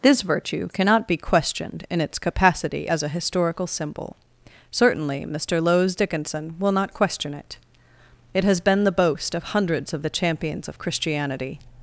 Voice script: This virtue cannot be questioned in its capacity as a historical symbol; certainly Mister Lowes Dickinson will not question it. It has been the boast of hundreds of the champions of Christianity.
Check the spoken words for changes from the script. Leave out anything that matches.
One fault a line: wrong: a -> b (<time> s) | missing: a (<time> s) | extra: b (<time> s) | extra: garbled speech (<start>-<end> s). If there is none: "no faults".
no faults